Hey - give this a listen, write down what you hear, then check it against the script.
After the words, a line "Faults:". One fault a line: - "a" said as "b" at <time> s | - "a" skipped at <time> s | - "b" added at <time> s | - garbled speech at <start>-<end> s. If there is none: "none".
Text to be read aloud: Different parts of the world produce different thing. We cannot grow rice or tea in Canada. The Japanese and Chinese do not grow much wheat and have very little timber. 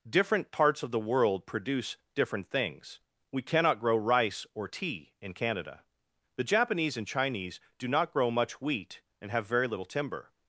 Different parts of the world produce different things. We cannot grow rice or tea in Canada. The Japanese and Chinese do not grow much wheat and have very little timber.
Faults:
- "thing" said as "things" at 2.5 s